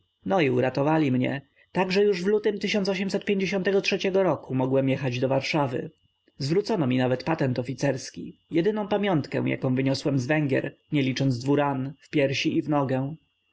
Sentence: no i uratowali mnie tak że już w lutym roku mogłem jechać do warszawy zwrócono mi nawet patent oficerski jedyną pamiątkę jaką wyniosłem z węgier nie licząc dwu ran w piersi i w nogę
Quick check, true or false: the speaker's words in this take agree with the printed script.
true